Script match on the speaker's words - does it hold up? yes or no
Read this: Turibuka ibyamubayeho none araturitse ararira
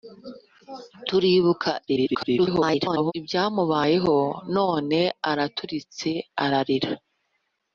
no